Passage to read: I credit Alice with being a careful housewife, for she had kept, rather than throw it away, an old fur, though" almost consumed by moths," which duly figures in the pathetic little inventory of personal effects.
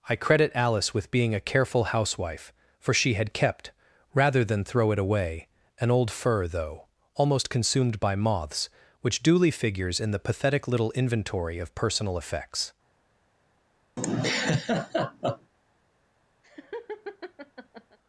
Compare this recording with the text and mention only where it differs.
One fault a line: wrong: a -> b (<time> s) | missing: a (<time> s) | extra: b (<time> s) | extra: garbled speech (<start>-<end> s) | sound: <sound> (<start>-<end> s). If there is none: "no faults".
sound: laugh (14.0-15.5 s)
sound: laugh (16.4-18.0 s)